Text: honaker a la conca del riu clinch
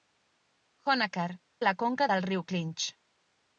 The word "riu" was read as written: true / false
true